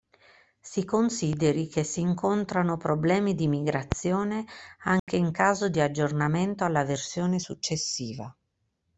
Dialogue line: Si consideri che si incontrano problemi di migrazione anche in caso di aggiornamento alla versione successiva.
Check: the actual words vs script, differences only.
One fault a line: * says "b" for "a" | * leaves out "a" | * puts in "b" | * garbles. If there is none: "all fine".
all fine